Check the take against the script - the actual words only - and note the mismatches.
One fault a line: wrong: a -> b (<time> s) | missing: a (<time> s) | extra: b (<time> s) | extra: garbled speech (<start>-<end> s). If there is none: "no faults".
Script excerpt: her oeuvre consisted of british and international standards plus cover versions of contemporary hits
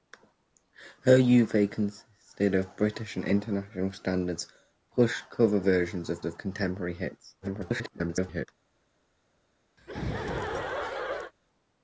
extra: of (6.2 s)
extra: garbled speech (7.4-8.5 s)